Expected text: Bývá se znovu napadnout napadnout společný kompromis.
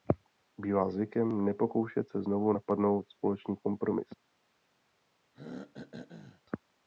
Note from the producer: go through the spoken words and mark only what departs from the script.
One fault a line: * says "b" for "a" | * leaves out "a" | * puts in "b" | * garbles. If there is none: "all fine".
* puts in "zvykem nepokoušet"
* leaves out "napadnout"